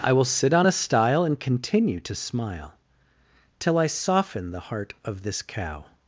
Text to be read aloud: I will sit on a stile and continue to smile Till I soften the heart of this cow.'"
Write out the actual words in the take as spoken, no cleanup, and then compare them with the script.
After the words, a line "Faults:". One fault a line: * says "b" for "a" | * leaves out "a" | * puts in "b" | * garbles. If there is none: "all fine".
I will sit on a stile and continue to smile Till I soften the heart of this cow.'"
Faults:
all fine